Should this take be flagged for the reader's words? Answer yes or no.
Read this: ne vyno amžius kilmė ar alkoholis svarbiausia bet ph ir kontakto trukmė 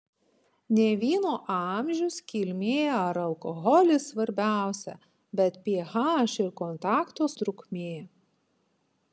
no